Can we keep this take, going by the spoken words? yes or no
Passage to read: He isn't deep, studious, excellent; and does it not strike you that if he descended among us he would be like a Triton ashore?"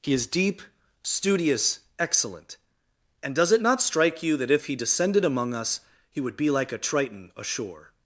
no